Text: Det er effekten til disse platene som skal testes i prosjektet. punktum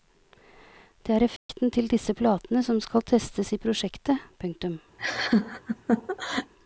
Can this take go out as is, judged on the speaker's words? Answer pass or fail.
pass